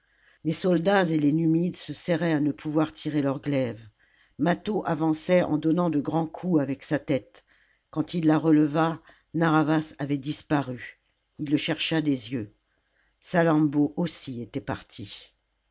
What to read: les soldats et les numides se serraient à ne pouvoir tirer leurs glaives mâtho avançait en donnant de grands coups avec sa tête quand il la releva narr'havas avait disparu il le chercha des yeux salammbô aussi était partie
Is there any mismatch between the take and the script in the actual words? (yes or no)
no